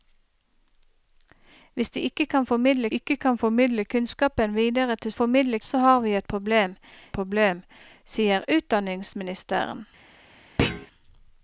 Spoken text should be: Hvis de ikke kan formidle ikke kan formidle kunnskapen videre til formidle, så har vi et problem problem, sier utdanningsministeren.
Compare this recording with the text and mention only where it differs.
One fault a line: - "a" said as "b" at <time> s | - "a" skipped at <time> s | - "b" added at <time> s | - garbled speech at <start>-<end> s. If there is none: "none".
none